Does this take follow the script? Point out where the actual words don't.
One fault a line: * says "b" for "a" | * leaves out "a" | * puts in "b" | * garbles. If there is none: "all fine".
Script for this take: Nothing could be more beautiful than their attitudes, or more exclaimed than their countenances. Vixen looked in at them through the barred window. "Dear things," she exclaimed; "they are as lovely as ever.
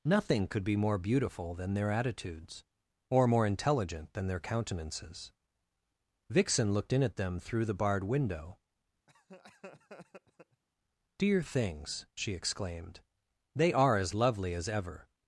* says "intelligent" for "exclaimed"